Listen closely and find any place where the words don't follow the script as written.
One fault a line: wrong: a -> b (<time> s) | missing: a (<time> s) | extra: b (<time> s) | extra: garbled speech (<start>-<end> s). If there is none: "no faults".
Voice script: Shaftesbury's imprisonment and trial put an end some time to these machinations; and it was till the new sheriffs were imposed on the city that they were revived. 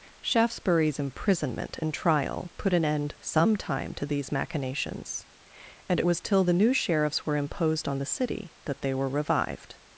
no faults